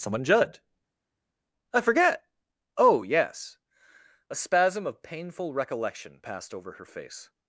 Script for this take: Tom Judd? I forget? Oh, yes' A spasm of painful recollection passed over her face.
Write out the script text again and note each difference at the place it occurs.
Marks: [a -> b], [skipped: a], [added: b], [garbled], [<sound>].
[Tom -> Someone] Judd? I forget? Oh, yes' A spasm of painful recollection passed over her face.